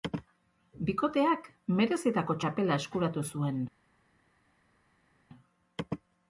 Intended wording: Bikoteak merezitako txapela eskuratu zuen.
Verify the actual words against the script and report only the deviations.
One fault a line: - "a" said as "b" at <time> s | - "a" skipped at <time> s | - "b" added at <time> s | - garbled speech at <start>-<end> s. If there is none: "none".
none